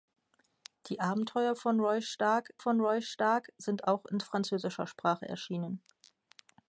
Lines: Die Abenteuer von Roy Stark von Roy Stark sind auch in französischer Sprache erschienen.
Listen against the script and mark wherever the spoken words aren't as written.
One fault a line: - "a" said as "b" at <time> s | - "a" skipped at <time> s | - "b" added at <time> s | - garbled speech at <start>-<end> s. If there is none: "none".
none